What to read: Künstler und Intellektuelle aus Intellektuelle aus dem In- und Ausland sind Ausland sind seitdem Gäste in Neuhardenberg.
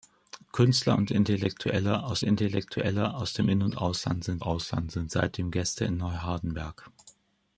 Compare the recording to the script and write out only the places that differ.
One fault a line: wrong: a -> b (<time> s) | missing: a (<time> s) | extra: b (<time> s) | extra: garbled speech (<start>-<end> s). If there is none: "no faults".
no faults